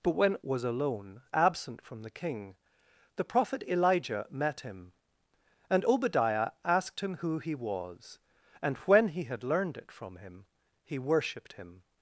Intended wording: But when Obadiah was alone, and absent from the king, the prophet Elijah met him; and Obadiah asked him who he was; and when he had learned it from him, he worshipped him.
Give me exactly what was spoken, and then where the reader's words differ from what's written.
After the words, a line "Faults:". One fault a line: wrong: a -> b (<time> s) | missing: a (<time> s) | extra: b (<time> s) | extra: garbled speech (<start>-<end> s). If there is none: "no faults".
But when Was alone, absent from the king, the prophet Elijah met him; and Obadiah asked him who he was; and when he had learned it from him, he worshipped him.
Faults:
missing: Obadiah (0.4 s)
missing: and (1.2 s)